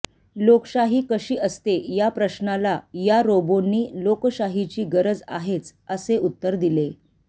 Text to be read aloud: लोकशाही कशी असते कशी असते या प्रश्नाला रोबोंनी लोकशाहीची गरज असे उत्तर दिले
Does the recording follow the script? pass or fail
fail